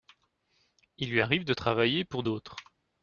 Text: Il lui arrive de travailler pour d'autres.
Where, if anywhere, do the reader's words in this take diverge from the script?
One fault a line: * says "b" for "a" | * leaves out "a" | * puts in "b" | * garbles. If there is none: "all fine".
all fine